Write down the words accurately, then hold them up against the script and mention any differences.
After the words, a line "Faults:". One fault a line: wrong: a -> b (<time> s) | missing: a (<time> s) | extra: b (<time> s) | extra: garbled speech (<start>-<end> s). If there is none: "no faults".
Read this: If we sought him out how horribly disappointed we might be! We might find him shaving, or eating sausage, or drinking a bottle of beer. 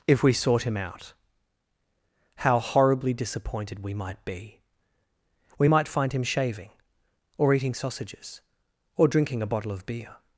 If we sought him out how horribly disappointed we might be! We might find him shaving, or eating sausages, or drinking a bottle of beer.
Faults:
wrong: sausage -> sausages (7.7 s)